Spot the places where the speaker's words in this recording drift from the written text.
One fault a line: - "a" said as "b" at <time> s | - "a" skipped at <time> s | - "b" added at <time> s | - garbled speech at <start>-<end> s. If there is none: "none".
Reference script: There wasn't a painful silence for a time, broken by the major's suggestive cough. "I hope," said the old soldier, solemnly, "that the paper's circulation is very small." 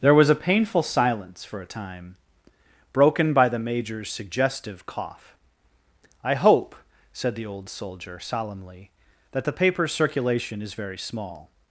- "wasn't" said as "was" at 0.1 s